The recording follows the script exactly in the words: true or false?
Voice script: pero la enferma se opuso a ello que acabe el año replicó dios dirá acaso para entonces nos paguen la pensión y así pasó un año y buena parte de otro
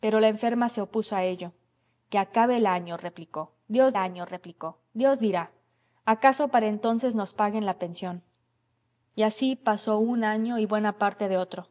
false